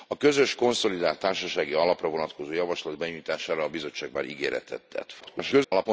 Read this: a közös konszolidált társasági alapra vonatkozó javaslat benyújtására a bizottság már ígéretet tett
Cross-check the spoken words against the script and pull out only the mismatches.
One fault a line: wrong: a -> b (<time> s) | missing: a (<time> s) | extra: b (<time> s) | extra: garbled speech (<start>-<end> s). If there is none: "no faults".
extra: garbled speech (5.2-5.9 s)